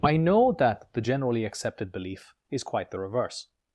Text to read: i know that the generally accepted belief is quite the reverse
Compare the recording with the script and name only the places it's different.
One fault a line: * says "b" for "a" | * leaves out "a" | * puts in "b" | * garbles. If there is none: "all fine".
all fine